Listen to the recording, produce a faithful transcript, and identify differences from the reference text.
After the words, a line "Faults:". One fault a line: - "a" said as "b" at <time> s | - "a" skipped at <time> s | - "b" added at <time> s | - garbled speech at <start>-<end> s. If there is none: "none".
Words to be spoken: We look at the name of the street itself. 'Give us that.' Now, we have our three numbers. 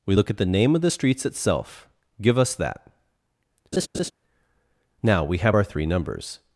We look at the name of the streets itself. 'Give us that.' Now, we have our three numbers.
Faults:
- "street" said as "streets" at 0.9 s